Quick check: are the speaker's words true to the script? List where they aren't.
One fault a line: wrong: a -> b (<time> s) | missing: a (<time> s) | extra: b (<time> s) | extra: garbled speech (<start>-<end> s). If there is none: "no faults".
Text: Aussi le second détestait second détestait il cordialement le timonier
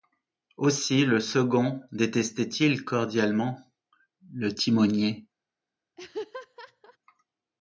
missing: second détestait (2.5 s)